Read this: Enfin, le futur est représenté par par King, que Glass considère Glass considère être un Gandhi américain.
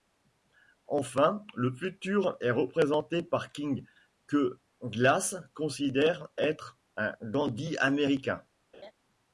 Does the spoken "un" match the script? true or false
true